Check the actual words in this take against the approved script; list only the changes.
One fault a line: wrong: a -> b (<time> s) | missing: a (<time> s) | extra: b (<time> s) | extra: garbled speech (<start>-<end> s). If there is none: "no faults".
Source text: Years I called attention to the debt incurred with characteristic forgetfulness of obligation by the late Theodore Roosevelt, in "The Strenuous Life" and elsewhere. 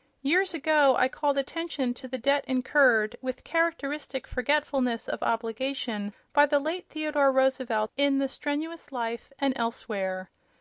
extra: ago (0.6 s)